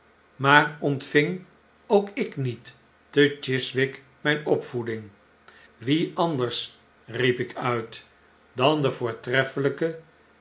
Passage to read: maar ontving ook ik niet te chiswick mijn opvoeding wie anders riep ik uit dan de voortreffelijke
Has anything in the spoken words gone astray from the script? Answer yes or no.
no